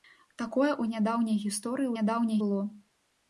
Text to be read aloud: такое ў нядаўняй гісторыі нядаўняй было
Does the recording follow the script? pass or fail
pass